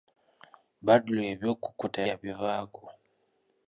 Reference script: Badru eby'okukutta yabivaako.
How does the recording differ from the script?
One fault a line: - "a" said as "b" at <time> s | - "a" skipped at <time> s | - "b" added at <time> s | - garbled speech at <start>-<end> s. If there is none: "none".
none